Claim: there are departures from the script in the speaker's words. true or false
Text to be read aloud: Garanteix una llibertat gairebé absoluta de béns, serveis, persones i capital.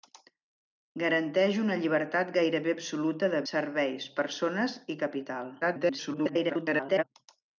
true